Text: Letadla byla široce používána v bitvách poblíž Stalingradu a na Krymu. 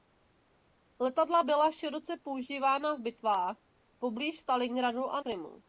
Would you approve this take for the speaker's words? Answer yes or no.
no